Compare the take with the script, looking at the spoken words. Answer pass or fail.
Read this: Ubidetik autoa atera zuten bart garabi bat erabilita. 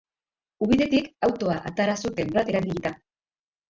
fail